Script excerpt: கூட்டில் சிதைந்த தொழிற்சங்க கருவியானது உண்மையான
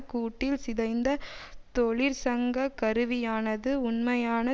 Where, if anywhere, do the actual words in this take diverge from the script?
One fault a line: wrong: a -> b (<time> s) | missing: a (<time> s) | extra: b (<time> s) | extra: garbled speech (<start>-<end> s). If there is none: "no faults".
no faults